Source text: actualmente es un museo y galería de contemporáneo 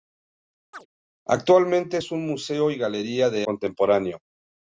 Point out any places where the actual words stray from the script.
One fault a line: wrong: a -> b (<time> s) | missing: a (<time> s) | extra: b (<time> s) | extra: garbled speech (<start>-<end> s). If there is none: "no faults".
no faults